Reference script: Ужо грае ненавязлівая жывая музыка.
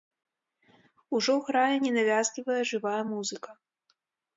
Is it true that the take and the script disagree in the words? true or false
false